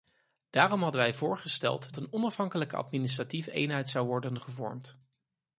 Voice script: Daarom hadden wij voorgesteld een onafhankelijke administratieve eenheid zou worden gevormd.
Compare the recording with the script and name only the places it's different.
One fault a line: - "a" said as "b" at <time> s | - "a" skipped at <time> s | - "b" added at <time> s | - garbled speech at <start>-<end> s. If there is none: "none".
none